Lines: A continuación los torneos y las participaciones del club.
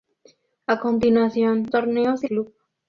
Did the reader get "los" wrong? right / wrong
wrong